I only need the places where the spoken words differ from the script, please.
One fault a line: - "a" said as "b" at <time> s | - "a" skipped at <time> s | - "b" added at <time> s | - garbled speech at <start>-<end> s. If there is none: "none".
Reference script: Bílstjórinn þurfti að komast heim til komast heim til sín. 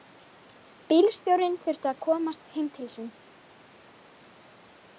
- "komast heim til" skipped at 2.9 s